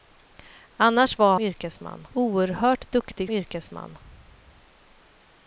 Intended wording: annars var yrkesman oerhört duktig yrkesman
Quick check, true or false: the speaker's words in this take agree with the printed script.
true